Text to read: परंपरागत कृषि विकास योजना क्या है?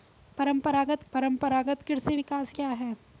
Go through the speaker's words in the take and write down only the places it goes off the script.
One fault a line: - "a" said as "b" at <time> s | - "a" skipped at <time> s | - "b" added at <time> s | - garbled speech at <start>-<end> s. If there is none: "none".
- "परंपरागत" added at 1.1 s
- "योजना" skipped at 2.5 s